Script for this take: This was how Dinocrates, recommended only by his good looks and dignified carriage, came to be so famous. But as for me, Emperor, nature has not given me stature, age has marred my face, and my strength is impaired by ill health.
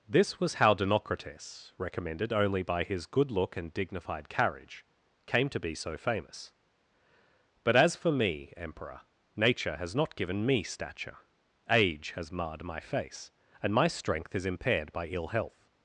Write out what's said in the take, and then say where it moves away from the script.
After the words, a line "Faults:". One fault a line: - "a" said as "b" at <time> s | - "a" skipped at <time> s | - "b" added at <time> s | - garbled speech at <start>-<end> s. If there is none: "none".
This was how Dinocrates, recommended only by his good look and dignified carriage, came to be so famous. But as for me, Emperor, nature has not given me stature, age has marred my face, and my strength is impaired by ill health.
Faults:
- "looks" said as "look" at 3.3 s